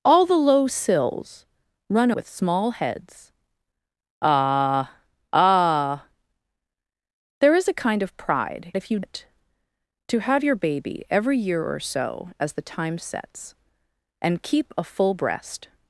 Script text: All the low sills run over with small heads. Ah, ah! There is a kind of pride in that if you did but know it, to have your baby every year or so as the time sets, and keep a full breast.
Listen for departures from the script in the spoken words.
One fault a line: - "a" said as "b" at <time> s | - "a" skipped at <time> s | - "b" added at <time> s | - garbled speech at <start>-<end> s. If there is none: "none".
- "over" skipped at 2.1 s
- "in that" skipped at 8.7 s
- "did but know" skipped at 9.0 s